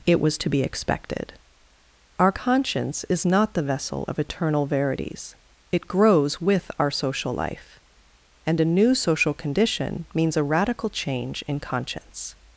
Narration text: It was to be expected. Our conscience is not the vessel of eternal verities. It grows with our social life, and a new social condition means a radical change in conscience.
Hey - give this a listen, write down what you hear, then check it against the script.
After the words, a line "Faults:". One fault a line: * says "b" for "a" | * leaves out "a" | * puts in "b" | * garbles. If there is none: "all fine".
It was to be expected. Our conscience is not the vessel of eternal verities. It grows with our social life, and a new social condition means a radical change in conscience.
Faults:
all fine